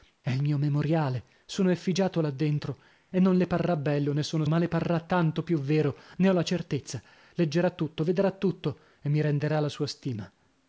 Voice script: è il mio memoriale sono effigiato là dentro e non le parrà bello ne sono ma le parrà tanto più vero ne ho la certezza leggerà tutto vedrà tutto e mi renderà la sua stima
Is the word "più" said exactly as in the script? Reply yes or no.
yes